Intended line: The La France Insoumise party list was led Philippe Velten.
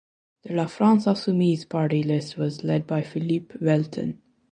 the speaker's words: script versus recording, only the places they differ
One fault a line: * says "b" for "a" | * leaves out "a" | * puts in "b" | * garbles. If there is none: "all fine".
* puts in "by"